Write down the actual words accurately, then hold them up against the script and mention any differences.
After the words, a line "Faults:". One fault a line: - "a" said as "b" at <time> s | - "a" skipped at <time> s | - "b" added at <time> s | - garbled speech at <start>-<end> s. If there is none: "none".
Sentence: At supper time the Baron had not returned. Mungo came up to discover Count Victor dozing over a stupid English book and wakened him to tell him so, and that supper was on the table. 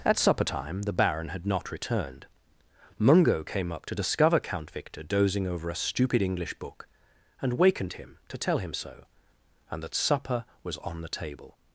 At supper time the Baron had not returned. Mungo came up to discover Count Victor dozing over a stupid English book and wakened him to tell him so, and that supper was on the table.
Faults:
none